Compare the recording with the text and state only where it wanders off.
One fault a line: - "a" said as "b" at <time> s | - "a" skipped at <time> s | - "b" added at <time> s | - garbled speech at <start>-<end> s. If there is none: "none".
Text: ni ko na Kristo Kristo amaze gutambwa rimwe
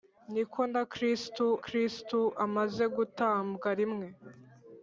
none